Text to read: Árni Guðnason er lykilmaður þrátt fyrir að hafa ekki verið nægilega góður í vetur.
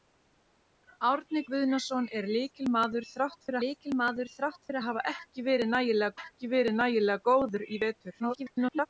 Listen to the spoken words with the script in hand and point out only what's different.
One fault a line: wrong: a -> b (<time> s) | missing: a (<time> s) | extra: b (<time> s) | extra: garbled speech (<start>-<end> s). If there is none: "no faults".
extra: lykilmaður þrátt fyrir (3.6 s)
extra: ekki verið nægilega (6.2 s)
extra: garbled speech (8.2-8.9 s)